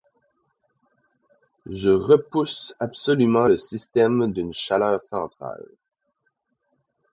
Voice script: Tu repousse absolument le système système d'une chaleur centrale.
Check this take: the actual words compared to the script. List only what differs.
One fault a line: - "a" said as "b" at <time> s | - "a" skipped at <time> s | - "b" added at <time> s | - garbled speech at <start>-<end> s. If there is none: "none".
- "Tu" said as "Je" at 1.7 s
- "système" skipped at 4.3 s